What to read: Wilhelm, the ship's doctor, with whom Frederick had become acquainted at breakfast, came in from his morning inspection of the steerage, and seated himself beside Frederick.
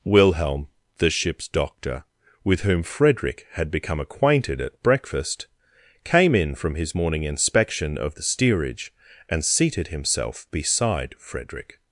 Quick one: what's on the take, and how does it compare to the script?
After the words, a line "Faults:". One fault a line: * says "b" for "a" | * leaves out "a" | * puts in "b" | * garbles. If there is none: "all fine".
Wilhelm, the ship's doctor, with whom Frederick had become acquainted at breakfast, came in from his morning inspection of the steerage, and seated himself beside Frederick.
Faults:
all fine